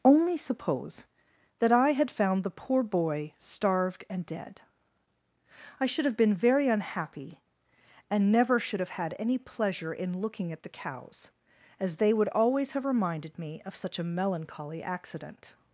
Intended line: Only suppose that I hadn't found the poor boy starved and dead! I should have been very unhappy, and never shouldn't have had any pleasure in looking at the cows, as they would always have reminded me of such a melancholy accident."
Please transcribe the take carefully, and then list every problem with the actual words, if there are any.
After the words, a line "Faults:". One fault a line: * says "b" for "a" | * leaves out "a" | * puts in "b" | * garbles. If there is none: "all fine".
Only suppose that I had found the poor boy starved and dead! I should have been very unhappy, and never should have had any pleasure in looking at the cows, as they would always have reminded me of such a melancholy accident."
Faults:
* says "had" for "hadn't"
* says "should" for "shouldn't"